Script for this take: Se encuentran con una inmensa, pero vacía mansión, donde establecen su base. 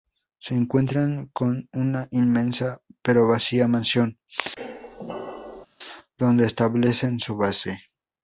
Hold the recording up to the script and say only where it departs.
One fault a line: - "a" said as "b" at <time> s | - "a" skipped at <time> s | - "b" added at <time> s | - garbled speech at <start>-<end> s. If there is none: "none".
none